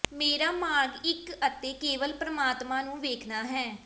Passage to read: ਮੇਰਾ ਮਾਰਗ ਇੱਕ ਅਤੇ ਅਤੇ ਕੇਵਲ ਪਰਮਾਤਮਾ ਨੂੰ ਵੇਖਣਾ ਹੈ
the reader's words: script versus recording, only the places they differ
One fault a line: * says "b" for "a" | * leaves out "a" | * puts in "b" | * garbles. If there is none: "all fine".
* leaves out "ਅਤੇ"